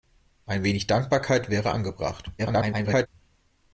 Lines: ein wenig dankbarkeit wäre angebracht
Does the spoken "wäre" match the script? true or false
true